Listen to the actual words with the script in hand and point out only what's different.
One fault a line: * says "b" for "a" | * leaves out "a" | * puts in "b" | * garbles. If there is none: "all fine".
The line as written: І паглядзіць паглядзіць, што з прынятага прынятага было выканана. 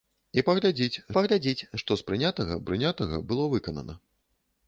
all fine